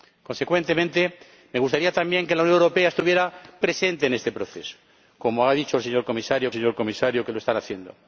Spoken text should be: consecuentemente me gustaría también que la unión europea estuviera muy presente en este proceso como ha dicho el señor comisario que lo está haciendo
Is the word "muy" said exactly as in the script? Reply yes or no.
no